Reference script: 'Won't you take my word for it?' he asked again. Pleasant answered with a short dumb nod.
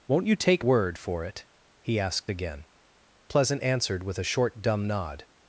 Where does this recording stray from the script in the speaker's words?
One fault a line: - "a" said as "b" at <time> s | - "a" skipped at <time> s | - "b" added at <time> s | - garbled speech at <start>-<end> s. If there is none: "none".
- "my" skipped at 0.7 s